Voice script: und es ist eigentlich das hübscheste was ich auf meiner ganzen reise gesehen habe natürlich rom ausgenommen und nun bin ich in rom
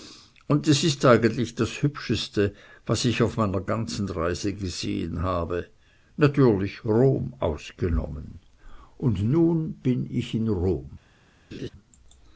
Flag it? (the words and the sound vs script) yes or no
yes